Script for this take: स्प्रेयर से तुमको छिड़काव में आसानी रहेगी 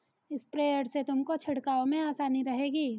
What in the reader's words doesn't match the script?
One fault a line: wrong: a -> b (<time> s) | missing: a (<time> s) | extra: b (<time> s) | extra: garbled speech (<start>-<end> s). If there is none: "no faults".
no faults